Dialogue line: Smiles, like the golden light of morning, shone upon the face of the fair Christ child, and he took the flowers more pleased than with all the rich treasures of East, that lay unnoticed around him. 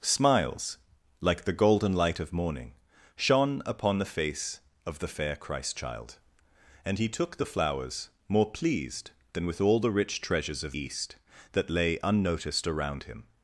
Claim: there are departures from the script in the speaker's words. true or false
false